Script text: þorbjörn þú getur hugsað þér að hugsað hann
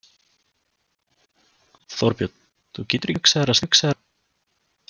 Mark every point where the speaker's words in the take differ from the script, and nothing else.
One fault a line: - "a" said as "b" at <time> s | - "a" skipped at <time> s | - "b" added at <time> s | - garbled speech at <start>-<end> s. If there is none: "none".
none